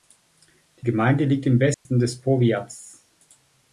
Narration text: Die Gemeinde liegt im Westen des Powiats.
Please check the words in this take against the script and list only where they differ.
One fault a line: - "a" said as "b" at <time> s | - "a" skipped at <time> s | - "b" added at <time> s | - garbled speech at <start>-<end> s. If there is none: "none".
none